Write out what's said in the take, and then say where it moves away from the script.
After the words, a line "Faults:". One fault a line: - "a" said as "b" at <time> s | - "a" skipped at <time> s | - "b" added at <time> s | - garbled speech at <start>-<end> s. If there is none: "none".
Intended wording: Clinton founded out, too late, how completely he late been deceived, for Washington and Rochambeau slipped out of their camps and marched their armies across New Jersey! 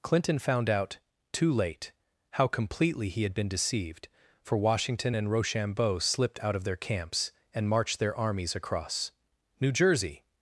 Clinton found out, too late, how completely he had been deceived, for Washington and Rochambeau slipped out of their camps and marched their armies across New Jersey!
Faults:
- "founded" said as "found" at 0.4 s
- "late" said as "had" at 3.2 s